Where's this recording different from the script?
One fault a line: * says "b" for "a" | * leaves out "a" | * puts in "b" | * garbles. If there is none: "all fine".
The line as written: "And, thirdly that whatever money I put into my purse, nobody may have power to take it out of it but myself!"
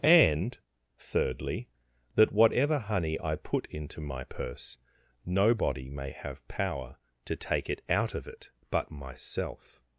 * says "honey" for "money"